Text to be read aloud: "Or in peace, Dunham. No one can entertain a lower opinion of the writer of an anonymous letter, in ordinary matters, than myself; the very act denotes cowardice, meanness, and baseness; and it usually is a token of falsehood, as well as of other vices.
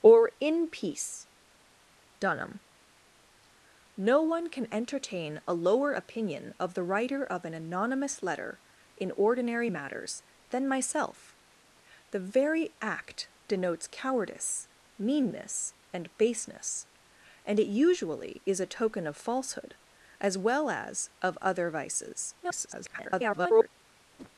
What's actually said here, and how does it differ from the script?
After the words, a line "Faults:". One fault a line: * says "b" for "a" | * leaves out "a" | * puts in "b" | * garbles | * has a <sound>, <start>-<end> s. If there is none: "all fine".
"Or in peace, Dunham. No one can entertain a lower opinion of the writer of an anonymous letter, in ordinary matters, than myself; the very act denotes cowardice, meanness, and baseness; and it usually is a token of falsehood, as well as of other vices. [garbled]
Faults:
* garbles
* has a whoosh, 24.2-24.3 s